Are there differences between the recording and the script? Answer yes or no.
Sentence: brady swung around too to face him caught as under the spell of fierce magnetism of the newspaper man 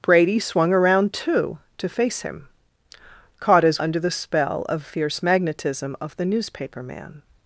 no